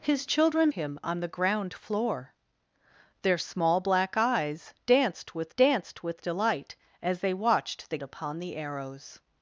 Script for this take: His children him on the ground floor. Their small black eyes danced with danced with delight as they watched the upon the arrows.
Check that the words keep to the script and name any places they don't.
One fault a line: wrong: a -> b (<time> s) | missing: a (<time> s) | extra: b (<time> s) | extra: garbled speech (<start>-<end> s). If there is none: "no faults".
no faults